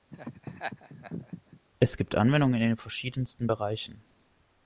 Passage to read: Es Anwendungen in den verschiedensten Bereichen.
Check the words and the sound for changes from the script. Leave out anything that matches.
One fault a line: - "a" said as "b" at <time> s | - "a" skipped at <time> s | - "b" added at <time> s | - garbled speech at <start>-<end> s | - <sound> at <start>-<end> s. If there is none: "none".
- laugh at 0.1-1.6 s
- "gibt" added at 2.0 s